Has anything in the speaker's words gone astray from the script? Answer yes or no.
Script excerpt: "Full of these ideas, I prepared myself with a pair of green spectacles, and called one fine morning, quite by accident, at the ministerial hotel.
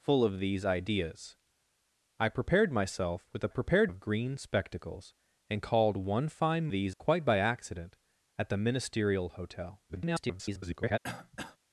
yes